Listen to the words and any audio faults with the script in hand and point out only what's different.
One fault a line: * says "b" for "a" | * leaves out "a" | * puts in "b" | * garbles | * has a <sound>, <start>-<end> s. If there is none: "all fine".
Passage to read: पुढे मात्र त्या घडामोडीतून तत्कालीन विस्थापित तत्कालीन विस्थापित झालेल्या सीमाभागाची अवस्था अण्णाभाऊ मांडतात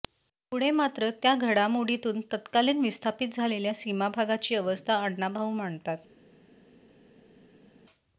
* leaves out "तत्कालीन विस्थापित"